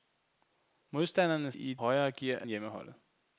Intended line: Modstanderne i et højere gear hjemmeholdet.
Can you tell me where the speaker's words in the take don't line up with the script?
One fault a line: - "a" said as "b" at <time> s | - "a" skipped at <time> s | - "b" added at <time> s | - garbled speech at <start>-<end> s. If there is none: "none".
none